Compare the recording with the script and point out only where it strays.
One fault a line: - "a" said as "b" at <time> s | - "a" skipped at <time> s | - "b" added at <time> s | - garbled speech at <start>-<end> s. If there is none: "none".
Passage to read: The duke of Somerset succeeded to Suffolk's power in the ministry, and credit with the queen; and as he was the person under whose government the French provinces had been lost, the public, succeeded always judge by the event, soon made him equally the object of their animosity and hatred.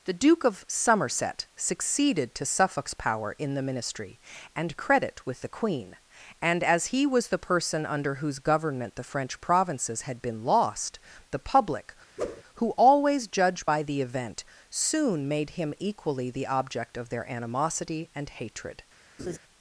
- "succeeded" said as "who" at 12.5 s